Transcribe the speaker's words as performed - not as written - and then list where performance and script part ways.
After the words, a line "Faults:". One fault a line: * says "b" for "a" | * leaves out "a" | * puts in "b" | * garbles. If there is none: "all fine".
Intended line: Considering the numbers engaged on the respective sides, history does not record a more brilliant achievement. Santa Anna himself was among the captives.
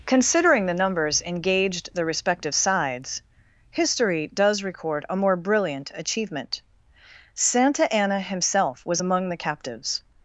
Considering the numbers engaged the respective sides, history does record a more brilliant achievement. Santa Anna himself was among the captives.
Faults:
* leaves out "on"
* leaves out "not"